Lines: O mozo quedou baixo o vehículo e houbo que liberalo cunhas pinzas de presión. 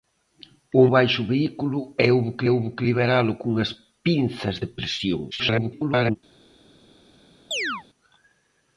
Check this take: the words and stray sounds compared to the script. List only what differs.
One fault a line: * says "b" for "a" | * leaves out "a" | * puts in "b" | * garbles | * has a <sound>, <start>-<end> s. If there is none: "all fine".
* leaves out "mozo quedou"
* puts in "houbo que"
* garbles
* has a chirp, 7.5-7.8 s